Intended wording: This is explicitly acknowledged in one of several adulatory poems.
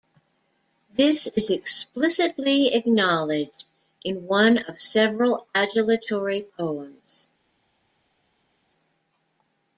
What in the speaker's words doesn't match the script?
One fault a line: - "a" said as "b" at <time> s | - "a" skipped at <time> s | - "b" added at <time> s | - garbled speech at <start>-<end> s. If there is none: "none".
none